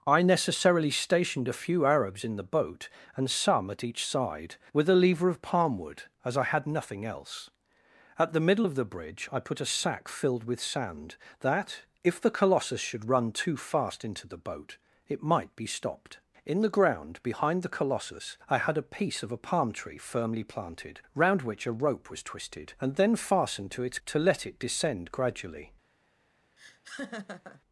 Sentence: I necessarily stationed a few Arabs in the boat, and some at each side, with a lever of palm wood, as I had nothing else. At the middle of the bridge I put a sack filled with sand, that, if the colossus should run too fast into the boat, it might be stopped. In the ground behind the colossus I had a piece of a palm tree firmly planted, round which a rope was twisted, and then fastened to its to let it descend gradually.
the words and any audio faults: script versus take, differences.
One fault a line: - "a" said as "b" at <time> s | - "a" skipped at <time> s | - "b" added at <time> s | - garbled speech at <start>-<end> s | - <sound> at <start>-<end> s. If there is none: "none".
- laugh at 26.6-27.6 s